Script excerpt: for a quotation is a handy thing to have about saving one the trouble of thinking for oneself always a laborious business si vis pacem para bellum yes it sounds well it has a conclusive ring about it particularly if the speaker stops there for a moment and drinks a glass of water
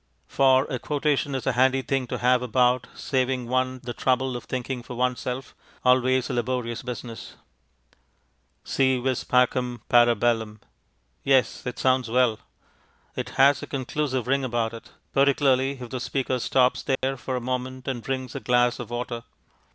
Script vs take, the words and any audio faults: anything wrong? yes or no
yes